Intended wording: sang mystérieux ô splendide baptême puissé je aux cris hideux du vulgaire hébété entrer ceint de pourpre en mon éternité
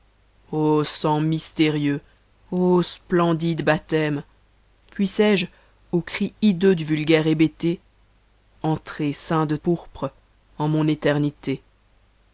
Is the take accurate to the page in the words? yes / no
yes